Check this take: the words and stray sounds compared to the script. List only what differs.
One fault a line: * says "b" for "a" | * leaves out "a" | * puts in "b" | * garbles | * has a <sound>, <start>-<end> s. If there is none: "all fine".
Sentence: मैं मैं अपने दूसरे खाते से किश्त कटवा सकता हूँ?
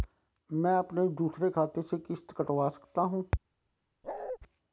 * leaves out "मैं"
* has a bark, 4.0-4.4 s